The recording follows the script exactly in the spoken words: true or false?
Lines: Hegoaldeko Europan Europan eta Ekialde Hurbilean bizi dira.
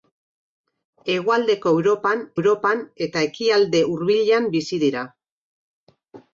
true